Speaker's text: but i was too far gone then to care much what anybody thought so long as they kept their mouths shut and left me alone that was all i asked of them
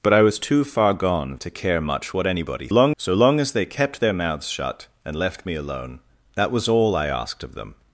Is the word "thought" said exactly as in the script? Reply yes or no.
no